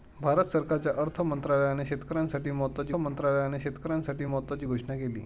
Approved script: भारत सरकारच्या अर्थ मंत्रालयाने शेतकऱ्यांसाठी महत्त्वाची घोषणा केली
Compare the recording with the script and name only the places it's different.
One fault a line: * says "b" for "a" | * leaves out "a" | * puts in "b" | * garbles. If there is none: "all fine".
* puts in "मंत्रालयाने शेतकऱ्यांसाठी महत्त्वाची"